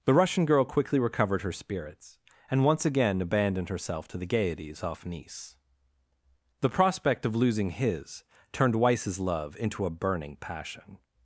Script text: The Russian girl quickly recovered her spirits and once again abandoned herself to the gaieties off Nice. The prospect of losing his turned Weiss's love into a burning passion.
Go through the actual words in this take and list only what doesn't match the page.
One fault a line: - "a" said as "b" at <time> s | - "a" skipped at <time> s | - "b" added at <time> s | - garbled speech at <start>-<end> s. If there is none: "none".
none